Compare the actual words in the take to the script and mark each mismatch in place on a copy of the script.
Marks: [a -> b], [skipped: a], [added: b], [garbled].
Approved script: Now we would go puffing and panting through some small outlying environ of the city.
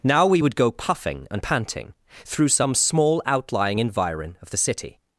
Now we would go puffing and panting through some small outlying environ of the city.